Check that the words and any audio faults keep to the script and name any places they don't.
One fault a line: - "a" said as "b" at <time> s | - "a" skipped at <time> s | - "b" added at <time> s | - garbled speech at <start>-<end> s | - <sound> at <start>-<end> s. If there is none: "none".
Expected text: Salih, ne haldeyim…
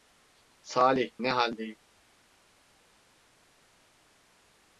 none